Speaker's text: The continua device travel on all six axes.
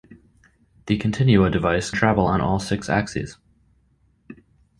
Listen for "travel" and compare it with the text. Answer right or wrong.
right